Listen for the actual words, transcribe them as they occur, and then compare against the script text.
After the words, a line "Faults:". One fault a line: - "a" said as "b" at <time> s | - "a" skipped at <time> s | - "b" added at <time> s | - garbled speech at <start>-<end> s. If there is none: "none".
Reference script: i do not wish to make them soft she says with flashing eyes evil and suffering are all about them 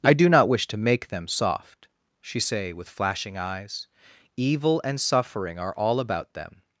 i do not wish to make them soft she say with flashing eyes evil and suffering are all about them
Faults:
- "says" said as "say" at 2.4 s